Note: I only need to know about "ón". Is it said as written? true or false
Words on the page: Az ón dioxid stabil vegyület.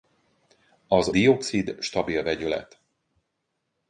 false